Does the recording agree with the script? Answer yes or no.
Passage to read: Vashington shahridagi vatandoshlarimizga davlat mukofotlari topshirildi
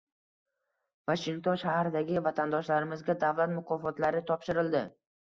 yes